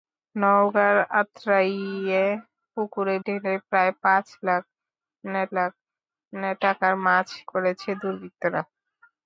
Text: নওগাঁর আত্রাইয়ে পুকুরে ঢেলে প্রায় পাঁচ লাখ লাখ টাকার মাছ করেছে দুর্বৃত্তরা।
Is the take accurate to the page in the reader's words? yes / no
yes